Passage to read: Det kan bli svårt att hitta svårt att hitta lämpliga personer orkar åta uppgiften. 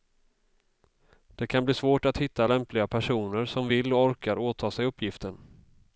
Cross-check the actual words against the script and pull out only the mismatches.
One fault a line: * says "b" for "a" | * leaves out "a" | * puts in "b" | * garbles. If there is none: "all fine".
* says "lämpliga personer som vill och" for "svårt att hitta lämpliga personer"
* puts in "sig"